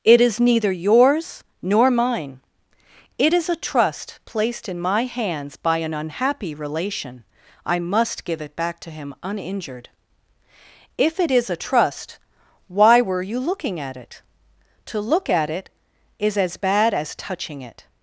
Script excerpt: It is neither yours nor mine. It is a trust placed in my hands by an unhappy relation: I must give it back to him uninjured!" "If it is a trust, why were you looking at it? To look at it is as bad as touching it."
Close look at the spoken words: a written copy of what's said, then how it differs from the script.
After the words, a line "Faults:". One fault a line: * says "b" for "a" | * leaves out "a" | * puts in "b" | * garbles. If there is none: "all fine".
It is neither yours nor mine. It is a trust placed in my hands by an unhappy relation: I must give it back to him uninjured!" "If it is a trust, why were you looking at it? To look at it is as bad as touching it."
Faults:
all fine